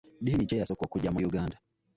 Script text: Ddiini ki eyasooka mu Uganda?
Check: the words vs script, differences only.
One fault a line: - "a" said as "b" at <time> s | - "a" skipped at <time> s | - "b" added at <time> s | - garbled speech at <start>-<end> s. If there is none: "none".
- "okujja" added at 0.8 s